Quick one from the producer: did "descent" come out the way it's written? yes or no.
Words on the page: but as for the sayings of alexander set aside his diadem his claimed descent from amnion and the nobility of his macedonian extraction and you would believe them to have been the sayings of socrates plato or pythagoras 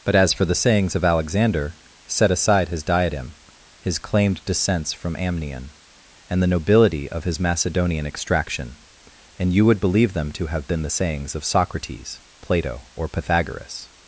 no